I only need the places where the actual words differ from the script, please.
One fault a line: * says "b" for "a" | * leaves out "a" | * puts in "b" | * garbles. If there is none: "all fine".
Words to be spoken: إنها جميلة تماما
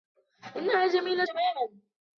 all fine